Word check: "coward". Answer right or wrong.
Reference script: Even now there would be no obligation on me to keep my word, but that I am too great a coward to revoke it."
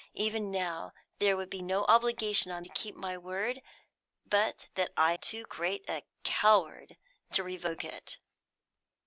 right